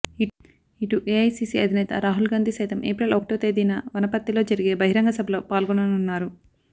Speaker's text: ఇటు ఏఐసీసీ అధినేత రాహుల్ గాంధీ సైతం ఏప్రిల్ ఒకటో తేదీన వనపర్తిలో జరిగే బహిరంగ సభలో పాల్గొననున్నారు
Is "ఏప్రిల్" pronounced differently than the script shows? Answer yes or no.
no